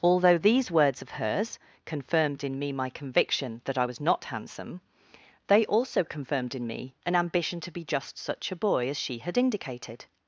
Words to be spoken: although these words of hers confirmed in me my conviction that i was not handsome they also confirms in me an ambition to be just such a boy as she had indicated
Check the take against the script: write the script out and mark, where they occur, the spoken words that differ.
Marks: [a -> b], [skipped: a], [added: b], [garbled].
although these words of hers confirmed in me my conviction that i was not handsome they also [confirms -> confirmed] in me an ambition to be just such a boy as she had indicated